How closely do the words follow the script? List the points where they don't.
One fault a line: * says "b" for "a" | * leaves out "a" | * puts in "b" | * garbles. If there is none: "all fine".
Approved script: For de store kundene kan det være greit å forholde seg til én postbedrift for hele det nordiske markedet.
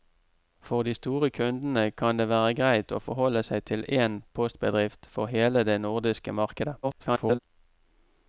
* garbles